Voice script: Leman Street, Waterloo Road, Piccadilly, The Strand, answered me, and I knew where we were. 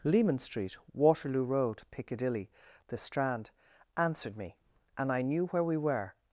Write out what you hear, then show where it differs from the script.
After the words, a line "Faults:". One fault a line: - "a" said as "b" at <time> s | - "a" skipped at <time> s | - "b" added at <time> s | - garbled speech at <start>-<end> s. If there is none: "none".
Leman Street, Waterloo Road, Piccadilly, The Strand, answered me, and I knew where we were.
Faults:
none